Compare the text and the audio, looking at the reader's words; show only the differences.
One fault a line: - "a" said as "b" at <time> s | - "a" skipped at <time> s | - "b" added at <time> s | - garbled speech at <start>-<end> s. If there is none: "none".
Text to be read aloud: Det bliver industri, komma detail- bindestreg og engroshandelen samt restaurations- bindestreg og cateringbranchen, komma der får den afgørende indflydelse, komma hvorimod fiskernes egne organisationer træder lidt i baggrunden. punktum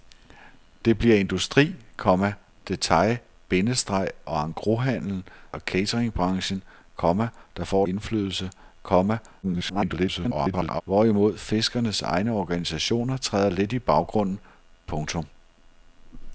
- "samt restaurations bindestreg" skipped at 5.2 s
- "den afgørende" skipped at 7.8 s
- garbled speech at 9.4-10.8 s